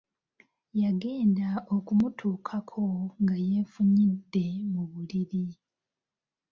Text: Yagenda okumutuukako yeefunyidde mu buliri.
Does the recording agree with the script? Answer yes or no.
no